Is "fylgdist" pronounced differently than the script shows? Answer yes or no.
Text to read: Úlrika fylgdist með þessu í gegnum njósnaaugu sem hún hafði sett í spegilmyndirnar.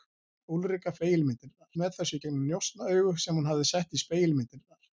yes